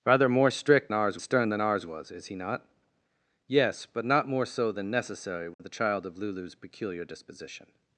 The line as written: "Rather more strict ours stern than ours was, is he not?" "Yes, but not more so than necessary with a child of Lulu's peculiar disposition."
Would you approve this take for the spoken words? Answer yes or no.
yes